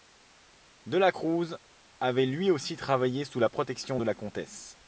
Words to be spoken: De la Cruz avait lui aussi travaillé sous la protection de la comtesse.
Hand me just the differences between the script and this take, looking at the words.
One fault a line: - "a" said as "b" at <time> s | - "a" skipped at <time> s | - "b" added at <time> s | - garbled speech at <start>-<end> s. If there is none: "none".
none